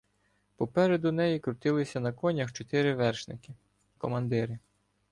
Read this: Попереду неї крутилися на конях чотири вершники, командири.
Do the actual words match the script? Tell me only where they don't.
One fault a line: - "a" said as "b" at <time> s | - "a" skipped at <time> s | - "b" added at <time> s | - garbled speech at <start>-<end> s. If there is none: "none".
none